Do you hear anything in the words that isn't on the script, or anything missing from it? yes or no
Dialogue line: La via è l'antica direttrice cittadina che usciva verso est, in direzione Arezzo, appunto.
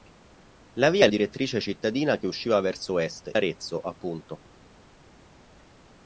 yes